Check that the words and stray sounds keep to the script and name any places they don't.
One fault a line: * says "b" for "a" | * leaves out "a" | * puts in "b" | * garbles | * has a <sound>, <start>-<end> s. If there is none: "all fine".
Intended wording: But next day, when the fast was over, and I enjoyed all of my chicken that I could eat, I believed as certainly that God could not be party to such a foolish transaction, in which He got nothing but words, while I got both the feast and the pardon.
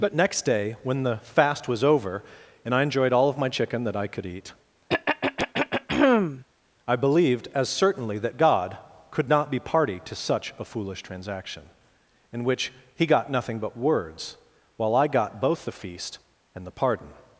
* has a throat clearing, 4.9-6.4 s